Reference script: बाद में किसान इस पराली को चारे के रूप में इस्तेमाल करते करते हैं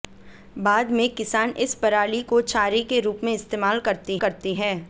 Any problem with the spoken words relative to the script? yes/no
no